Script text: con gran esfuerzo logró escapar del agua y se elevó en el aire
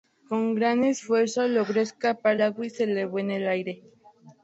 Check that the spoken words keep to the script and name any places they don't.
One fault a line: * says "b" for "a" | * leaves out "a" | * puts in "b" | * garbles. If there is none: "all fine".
* leaves out "del"